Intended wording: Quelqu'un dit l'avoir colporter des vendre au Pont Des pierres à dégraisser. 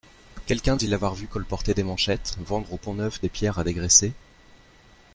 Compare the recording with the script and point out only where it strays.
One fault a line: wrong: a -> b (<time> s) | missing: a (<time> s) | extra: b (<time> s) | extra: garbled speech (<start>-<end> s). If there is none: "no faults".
extra: vu (1.1 s)
extra: manchettes (1.8 s)
extra: Neuf (2.9 s)